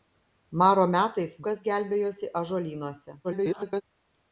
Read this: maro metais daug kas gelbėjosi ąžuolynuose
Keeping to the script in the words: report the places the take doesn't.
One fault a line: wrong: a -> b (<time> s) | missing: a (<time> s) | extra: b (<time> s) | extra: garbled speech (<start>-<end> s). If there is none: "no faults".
missing: daug (1.4 s)
extra: garbled speech (3.2-3.8 s)